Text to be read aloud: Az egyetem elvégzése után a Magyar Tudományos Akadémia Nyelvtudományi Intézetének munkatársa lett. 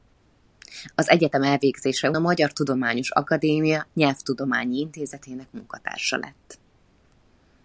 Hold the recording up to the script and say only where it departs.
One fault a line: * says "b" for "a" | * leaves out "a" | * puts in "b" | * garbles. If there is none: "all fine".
* leaves out "után"